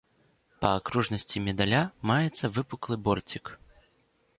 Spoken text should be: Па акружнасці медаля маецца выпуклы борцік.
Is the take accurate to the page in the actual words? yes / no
yes